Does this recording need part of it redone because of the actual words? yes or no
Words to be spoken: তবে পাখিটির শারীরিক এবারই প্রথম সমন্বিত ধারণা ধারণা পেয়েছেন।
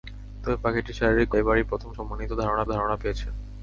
no